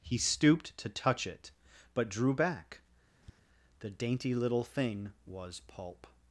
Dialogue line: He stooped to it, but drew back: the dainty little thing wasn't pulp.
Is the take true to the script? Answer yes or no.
no